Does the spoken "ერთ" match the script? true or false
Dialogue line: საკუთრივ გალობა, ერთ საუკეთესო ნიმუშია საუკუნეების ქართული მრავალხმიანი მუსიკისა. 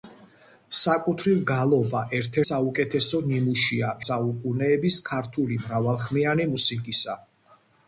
true